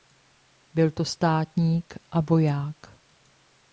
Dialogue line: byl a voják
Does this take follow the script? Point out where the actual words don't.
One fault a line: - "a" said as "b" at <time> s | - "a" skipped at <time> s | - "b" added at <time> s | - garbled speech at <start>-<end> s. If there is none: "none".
- "to státník" added at 0.9 s